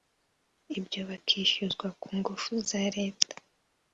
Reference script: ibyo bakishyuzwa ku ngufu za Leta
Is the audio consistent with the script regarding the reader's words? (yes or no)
yes